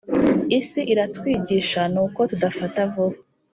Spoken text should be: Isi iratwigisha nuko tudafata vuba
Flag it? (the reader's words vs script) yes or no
no